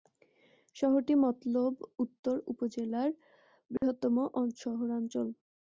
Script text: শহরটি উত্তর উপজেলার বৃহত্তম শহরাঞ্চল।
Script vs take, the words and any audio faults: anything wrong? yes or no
yes